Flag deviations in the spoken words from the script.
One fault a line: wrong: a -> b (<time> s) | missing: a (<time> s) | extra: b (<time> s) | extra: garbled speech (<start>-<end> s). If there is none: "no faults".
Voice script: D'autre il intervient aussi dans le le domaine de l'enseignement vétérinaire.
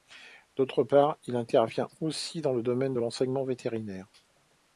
extra: part (0.8 s)
missing: le (2.6 s)